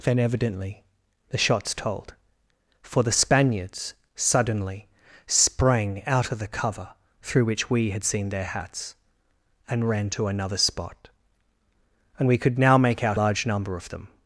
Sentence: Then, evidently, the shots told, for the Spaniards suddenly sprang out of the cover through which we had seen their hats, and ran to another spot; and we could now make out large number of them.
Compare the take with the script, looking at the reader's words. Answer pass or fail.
pass